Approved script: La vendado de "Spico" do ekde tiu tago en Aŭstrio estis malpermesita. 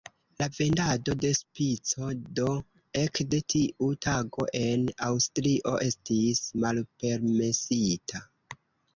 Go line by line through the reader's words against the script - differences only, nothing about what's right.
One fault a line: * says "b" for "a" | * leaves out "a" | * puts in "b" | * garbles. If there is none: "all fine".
all fine